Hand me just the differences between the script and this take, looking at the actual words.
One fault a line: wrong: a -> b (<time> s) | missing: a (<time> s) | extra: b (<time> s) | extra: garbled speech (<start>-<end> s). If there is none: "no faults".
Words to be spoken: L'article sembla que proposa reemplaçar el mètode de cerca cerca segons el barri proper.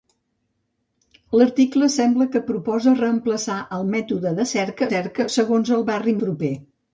no faults